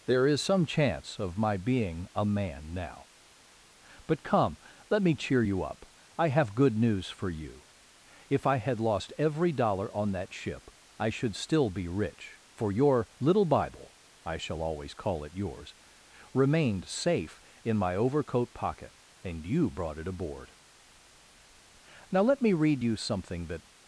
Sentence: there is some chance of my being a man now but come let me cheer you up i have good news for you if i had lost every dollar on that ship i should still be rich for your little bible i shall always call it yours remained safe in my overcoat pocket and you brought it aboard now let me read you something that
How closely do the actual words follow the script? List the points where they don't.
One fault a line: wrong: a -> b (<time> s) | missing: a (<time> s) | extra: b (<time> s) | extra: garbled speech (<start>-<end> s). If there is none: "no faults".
no faults